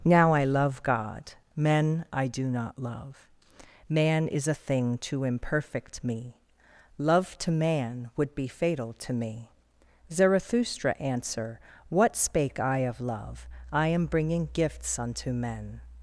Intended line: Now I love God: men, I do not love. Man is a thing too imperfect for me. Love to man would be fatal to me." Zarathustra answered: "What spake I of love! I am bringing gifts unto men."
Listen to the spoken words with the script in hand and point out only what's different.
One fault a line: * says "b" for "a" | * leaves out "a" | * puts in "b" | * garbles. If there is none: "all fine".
* leaves out "for"
* says "answer" for "answered"